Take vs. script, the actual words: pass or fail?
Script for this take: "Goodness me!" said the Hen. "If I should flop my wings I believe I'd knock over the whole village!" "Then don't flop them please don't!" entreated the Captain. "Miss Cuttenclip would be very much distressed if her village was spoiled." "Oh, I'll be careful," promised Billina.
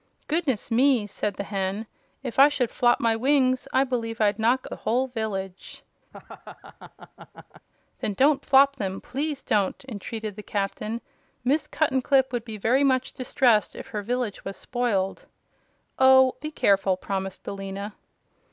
fail